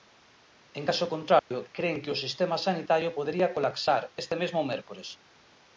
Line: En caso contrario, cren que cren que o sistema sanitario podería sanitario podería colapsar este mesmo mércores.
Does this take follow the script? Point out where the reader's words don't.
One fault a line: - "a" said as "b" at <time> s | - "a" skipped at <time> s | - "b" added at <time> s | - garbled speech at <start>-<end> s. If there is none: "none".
- "cren que" skipped at 2.1 s
- "sanitario podería" skipped at 3.5 s